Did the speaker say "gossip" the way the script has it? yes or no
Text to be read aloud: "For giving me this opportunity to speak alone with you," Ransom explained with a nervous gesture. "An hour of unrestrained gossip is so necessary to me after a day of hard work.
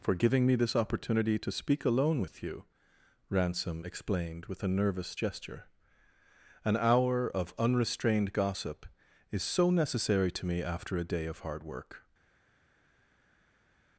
yes